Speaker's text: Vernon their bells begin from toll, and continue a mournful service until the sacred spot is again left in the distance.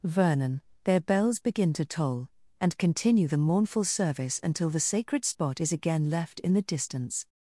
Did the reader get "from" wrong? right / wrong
wrong